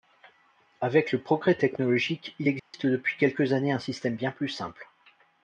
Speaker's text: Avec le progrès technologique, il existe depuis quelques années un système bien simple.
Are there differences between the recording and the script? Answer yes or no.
yes